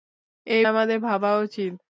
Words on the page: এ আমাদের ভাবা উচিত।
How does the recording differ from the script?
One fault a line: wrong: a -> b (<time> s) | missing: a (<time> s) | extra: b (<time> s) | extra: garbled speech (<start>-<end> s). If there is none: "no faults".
no faults